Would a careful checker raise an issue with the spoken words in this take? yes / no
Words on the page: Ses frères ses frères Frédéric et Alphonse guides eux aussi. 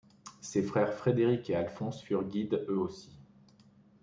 yes